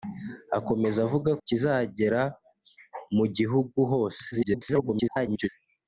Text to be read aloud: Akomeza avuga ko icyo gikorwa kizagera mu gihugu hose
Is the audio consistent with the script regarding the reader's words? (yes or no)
no